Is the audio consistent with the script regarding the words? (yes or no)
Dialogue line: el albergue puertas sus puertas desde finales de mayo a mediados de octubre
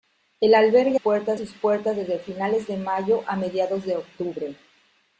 yes